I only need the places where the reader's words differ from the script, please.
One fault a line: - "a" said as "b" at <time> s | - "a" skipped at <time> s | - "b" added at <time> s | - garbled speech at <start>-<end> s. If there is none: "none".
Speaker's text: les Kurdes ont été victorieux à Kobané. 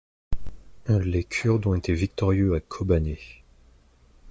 none